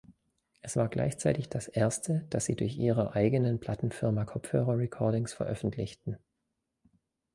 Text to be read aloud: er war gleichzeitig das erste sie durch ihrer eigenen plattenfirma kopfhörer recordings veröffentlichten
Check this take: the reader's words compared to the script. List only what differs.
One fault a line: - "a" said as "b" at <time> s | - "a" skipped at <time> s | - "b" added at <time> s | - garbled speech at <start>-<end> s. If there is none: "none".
- "er" said as "es" at 0.6 s
- "das" added at 2.3 s